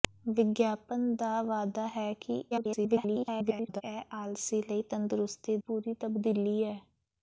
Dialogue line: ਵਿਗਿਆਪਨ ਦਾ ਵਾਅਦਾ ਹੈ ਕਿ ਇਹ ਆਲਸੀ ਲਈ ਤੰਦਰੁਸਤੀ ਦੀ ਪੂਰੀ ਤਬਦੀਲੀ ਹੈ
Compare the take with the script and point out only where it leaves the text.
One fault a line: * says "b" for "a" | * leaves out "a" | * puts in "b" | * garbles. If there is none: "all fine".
* garbles
* leaves out "ਦੀ"